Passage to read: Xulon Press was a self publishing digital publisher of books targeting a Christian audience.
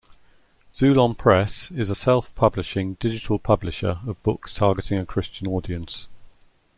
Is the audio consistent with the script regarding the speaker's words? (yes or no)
no